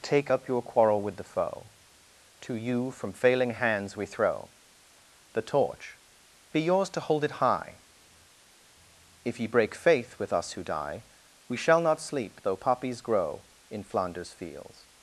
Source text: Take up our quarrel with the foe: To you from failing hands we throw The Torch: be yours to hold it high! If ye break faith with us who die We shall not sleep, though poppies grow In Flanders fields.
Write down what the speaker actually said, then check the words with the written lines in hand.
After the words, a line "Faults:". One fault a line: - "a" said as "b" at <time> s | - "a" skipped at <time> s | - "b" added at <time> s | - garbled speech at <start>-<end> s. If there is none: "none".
Take up your quarrel with the foe: To you from failing hands we throw The Torch: be yours to hold it high! If ye break faith with us who die We shall not sleep, though poppies grow In Flanders fields.
Faults:
- "our" said as "your" at 0.5 s